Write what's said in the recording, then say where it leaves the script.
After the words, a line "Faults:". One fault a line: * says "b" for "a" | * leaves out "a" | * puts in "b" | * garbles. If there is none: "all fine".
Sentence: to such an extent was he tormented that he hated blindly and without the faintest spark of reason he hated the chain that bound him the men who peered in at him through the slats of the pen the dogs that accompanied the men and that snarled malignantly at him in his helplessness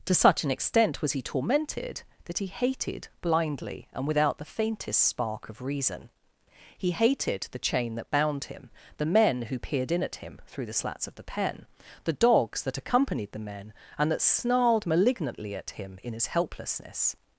to such an extent was he tormented that he hated blindly and without the faintest spark of reason he hated the chain that bound him the men who peered in at him through the slats of the pen the dogs that accompanied the men and that snarled malignantly at him in his helplessness
Faults:
all fine